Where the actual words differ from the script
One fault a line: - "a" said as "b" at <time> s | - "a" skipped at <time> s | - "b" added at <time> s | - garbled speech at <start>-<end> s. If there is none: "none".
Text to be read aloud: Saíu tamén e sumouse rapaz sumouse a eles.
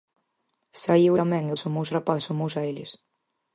none